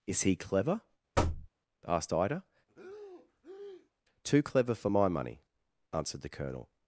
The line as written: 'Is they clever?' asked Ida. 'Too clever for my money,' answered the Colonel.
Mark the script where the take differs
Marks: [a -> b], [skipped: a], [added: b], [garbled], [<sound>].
'Is [they -> he] clever?' [thud] asked Ida. [breath] 'Too clever for my money,' answered the Colonel.